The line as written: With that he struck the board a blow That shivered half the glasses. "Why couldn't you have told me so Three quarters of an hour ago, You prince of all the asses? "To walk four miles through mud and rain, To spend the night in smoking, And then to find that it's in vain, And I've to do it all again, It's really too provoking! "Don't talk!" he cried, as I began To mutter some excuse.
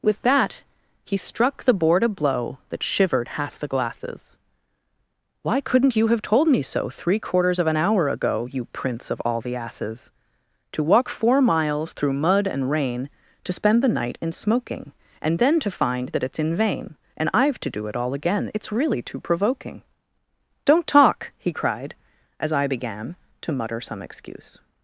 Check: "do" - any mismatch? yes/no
no